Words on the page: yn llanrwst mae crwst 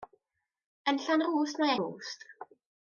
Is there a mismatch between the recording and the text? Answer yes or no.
no